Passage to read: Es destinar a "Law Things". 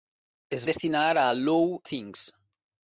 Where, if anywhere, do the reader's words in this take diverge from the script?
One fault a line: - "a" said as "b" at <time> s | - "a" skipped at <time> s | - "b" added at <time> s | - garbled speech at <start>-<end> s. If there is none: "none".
none